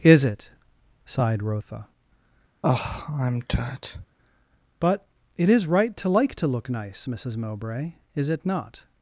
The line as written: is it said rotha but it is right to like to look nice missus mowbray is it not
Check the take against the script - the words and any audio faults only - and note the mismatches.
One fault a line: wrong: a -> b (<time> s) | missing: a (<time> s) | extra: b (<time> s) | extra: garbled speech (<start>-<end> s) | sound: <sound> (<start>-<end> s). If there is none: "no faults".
wrong: said -> sighed (1.1 s)
sound: sigh (2.6-4.1 s)